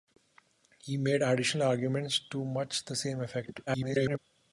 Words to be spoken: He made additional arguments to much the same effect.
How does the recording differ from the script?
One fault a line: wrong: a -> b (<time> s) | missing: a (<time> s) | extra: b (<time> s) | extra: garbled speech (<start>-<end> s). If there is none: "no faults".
extra: garbled speech (3.7-4.2 s)